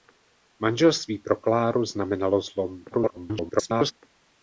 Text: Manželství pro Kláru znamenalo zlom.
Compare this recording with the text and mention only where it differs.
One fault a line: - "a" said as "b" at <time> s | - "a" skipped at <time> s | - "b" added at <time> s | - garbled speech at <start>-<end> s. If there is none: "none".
- garbled speech at 2.9-3.9 s